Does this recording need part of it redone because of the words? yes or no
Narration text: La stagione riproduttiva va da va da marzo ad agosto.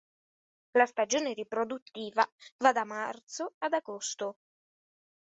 yes